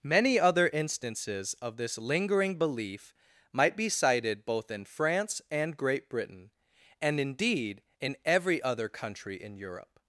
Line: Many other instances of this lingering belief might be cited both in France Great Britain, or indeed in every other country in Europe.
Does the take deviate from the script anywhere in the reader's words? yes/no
yes